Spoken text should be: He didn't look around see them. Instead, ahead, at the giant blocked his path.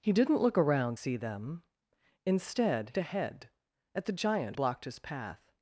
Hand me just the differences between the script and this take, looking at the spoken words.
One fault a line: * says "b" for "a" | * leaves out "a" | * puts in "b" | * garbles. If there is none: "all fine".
all fine